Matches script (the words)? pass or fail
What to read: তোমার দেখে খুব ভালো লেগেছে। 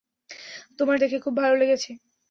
pass